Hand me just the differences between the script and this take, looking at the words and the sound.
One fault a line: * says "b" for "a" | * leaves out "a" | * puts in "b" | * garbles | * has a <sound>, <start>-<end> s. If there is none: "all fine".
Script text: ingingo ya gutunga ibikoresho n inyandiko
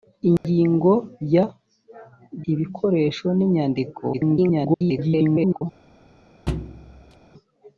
* has a dropout, 0.4-0.4 s
* leaves out "gutunga"
* garbles
* has a thud, 6.5-7.2 s